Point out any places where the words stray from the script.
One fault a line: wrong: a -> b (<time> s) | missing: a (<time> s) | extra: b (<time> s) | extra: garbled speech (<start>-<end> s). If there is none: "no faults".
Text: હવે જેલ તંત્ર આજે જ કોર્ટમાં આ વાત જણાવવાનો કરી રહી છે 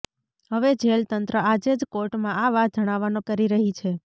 no faults